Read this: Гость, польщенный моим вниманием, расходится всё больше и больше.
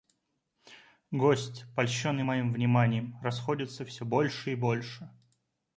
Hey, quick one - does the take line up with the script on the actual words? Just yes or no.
yes